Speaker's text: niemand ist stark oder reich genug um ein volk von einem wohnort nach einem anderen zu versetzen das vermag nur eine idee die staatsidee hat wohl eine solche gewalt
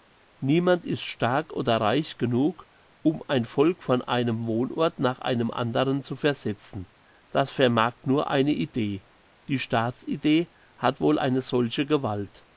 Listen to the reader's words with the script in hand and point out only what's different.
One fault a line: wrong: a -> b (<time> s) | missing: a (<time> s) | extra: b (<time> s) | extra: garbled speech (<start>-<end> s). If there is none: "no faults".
no faults